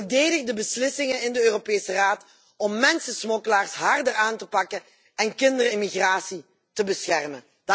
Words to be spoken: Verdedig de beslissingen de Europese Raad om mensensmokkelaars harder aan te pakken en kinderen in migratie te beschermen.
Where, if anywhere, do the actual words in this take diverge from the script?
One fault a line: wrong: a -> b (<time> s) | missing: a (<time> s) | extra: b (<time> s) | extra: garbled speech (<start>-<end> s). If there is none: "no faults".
extra: in (1.2 s)